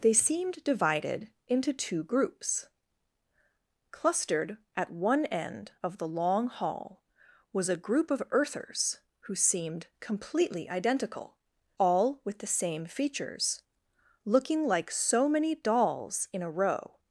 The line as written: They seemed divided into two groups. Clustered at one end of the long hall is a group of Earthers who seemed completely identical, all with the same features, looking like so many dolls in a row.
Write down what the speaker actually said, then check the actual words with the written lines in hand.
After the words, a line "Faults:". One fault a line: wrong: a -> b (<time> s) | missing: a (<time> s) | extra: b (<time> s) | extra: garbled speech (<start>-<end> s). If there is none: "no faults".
They seemed divided into two groups. Clustered at one end of the long hall was a group of Earthers who seemed completely identical, all with the same features, looking like so many dolls in a row.
Faults:
wrong: is -> was (7.5 s)